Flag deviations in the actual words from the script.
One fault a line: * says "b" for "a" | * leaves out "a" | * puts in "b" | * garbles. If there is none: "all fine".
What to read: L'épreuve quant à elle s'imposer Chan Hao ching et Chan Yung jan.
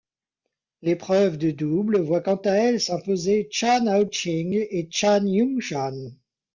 * puts in "de double voit"